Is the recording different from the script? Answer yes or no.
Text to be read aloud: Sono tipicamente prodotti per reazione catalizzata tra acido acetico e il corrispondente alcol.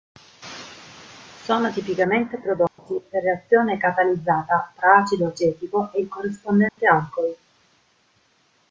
no